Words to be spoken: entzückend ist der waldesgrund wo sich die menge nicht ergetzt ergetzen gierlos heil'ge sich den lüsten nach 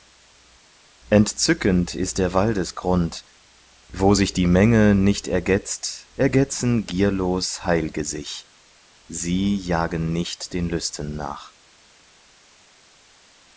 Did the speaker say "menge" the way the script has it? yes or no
yes